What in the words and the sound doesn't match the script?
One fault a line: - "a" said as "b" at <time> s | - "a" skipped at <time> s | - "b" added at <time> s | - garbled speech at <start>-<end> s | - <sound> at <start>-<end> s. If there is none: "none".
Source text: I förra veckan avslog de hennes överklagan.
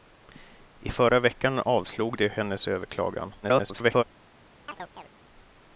- garbled speech at 3.4-4.0 s
- chirp at 4.7-5.1 s